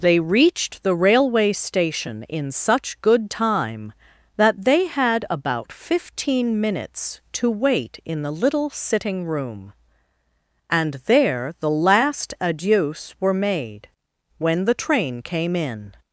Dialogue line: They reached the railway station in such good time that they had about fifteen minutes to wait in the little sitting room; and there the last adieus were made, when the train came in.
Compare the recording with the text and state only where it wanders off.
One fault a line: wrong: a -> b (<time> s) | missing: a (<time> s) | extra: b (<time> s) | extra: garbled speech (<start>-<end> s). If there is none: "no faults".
no faults